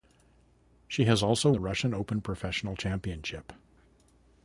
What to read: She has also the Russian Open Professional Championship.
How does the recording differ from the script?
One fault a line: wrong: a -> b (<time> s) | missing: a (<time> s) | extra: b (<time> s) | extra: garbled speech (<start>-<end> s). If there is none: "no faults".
no faults